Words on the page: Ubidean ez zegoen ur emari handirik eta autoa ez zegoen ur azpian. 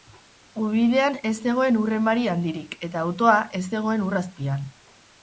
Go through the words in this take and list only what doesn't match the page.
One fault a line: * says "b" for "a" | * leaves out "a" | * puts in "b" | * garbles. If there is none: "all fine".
all fine